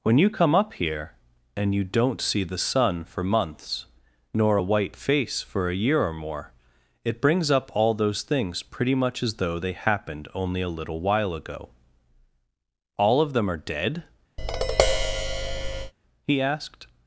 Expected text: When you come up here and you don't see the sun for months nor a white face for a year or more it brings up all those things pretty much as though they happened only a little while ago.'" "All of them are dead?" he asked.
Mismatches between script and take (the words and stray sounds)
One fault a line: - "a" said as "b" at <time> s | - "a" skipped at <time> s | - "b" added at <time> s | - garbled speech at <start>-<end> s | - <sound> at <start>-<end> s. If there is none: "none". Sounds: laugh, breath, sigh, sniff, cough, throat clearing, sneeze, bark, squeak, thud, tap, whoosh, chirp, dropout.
- tap at 14.4-15.9 s